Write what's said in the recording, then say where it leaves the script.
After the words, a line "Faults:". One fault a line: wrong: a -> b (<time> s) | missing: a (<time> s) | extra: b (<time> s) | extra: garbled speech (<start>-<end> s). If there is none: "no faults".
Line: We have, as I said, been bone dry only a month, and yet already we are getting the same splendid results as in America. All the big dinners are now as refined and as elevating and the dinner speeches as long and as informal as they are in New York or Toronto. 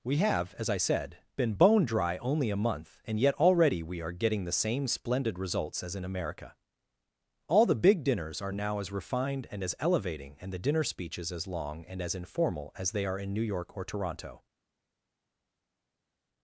We have, as I said, been bone dry only a month, and yet already we are getting the same splendid results as in America. All the big dinners are now as refined and as elevating and the dinner speeches as long and as informal as they are in New York or Toronto.
Faults:
no faults